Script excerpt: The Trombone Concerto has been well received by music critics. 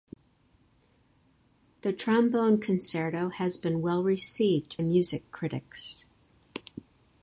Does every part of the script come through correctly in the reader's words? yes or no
no